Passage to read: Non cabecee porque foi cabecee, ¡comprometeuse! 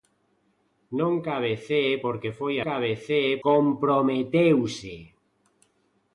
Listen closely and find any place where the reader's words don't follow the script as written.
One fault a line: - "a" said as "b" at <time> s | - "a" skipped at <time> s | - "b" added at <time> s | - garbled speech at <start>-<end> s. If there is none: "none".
none